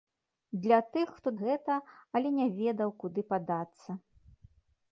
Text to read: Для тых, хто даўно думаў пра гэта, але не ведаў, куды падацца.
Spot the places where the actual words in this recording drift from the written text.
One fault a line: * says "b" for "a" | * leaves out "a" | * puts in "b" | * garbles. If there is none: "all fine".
* leaves out "даўно думаў пра"